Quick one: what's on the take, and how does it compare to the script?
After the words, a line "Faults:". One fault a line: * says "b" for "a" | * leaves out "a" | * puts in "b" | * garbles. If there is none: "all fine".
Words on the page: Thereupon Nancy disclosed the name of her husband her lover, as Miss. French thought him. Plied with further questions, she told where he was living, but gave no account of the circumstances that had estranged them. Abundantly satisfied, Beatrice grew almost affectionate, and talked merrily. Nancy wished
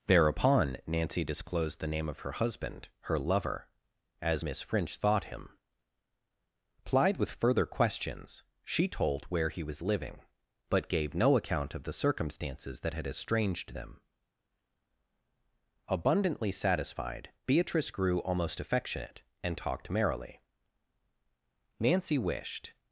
Thereupon Nancy disclosed the name of her husband her lover, as Miss. French thought him. Plied with further questions, she told where he was living, but gave no account of the circumstances that had estranged them. Abundantly satisfied, Beatrice grew almost affectionate, and talked merrily. Nancy wished
Faults:
all fine